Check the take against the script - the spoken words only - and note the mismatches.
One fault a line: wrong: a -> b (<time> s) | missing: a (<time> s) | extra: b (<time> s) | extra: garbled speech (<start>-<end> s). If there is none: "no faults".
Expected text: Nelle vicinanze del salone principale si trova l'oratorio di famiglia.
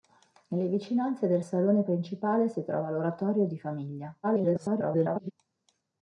extra: garbled speech (4.2-5.3 s)